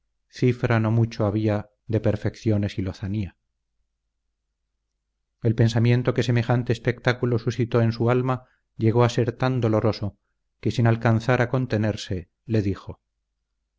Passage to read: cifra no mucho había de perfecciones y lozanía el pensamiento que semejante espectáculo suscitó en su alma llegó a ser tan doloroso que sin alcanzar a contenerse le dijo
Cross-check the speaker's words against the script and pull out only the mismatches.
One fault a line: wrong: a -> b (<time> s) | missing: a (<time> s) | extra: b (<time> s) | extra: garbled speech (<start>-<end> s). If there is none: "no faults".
no faults